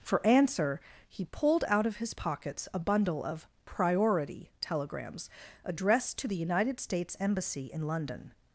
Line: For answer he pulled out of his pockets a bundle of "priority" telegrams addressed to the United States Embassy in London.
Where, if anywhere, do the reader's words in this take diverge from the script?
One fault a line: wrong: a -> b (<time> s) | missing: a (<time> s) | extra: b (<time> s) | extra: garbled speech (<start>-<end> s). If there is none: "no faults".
no faults